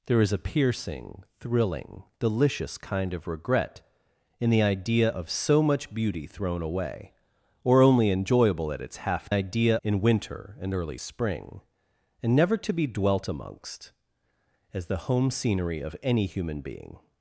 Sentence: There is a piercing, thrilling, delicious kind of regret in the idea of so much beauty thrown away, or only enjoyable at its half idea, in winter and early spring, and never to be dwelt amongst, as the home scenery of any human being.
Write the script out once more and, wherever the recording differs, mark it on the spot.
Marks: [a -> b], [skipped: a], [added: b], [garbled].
There is a piercing, thrilling, delicious kind of regret in the idea of so much beauty thrown away, or only enjoyable at its half idea, in winter and early spring, and never to be dwelt amongst, as the home scenery of any human being.